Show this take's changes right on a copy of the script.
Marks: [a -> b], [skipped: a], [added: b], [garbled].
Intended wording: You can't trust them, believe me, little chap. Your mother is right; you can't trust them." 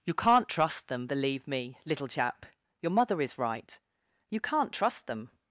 You can't trust them, believe me, little chap. Your mother is right; you can't trust them."